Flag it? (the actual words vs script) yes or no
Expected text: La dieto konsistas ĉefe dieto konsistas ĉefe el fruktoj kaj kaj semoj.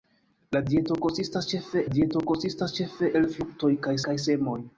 no